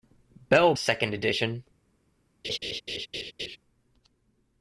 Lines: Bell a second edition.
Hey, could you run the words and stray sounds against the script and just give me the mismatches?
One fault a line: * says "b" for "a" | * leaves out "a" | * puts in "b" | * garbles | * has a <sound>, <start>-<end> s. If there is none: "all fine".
* has a laugh, 2.4-3.6 s